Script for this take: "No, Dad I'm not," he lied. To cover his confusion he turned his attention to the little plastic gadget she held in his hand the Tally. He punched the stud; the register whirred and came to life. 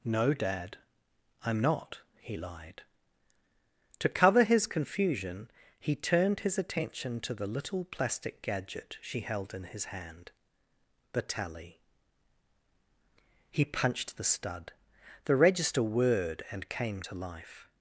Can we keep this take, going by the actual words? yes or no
yes